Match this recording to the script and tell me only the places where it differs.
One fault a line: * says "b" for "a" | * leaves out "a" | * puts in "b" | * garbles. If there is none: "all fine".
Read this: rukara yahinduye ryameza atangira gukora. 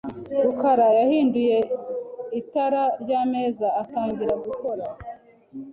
* puts in "itara"